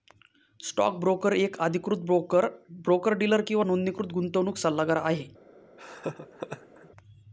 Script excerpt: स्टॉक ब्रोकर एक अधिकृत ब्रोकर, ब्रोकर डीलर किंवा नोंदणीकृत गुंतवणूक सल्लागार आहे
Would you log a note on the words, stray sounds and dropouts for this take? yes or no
yes